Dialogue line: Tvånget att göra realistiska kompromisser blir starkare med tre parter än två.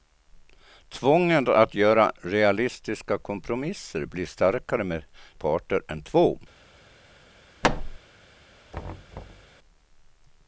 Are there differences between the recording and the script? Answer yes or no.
yes